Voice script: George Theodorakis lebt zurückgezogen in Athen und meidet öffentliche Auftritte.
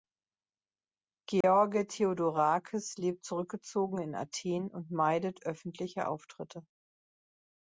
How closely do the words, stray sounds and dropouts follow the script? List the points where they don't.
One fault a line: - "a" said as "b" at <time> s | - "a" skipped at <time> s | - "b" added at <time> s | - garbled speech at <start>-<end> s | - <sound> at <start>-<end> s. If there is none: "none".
- dropout at 1.4-1.4 s